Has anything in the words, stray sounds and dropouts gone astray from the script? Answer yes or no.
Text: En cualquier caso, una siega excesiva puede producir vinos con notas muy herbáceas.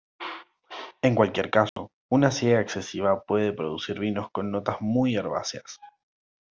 yes